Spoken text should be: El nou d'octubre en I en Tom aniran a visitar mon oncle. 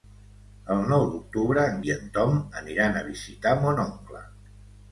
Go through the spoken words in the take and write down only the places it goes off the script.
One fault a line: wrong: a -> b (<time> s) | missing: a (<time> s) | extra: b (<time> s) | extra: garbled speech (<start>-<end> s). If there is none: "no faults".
no faults